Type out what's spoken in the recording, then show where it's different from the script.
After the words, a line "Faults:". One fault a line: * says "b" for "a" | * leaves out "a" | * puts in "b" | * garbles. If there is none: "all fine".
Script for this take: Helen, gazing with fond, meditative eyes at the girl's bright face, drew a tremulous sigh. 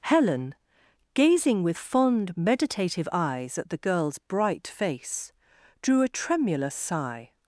Helen, gazing with fond, meditative eyes at the girl's bright face, drew a tremulous sigh.
Faults:
all fine